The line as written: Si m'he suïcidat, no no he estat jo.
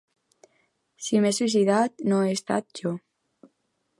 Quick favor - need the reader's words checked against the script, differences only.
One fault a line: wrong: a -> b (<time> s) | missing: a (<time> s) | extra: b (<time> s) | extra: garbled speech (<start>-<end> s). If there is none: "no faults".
missing: no (2.2 s)